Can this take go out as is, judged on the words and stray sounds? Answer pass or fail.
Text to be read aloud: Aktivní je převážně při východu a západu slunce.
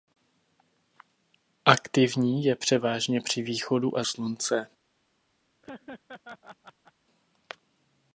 fail